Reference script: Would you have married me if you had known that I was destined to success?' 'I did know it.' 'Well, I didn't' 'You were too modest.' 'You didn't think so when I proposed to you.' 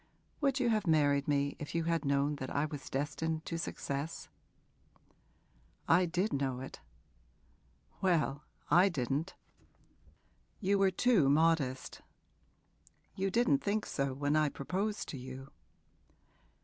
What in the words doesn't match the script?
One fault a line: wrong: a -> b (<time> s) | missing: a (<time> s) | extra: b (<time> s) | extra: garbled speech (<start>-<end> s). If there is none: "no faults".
no faults